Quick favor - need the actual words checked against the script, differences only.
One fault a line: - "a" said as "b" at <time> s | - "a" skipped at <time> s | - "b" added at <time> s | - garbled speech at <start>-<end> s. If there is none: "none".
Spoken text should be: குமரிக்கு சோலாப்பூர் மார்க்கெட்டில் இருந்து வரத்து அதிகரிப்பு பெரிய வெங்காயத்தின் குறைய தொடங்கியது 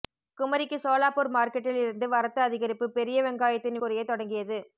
none